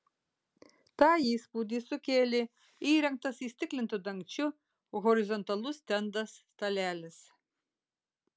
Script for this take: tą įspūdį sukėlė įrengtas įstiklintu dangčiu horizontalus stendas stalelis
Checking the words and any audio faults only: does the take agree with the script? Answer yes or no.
yes